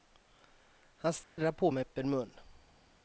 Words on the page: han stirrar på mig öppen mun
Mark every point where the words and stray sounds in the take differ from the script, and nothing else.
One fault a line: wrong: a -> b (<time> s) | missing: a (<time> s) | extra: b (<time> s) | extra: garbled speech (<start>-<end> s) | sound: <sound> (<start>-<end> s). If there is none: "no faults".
sound: dropout (1.2-1.4 s)